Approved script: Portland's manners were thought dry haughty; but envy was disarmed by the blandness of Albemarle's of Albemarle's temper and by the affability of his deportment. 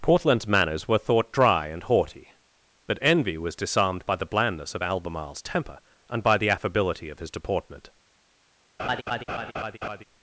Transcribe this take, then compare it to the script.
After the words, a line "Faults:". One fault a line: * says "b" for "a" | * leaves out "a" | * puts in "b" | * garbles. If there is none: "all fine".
Portland's manners were thought dry and haughty; but envy was disarmed by the blandness of Albemarle's temper and by the affability of his deportment.
Faults:
* puts in "and"
* leaves out "of Albemarle's"